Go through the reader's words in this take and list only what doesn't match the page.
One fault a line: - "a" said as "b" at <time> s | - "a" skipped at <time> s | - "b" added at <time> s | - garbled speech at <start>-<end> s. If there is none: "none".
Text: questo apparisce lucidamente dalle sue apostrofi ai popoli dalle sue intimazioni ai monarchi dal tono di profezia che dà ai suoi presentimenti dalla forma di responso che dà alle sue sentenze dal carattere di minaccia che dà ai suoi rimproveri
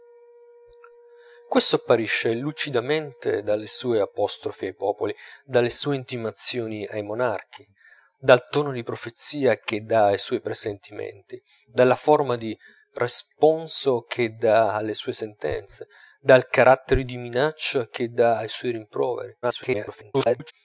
- garbled speech at 19.4-20.5 s